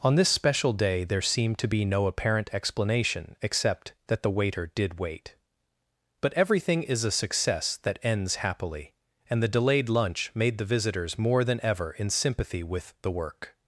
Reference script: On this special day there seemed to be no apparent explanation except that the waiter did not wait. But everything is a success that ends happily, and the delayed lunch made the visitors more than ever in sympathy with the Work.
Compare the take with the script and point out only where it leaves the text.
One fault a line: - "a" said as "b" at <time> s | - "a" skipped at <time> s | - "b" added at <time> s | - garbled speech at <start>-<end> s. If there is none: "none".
- "not" skipped at 5.0 s